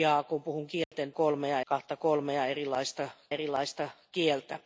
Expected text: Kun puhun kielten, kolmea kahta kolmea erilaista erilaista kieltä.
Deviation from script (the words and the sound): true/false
true